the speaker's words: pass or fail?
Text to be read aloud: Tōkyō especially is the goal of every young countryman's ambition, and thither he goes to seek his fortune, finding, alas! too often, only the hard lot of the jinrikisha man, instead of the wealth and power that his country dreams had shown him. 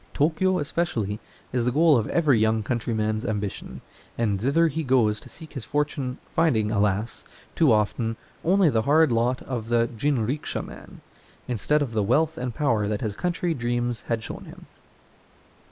pass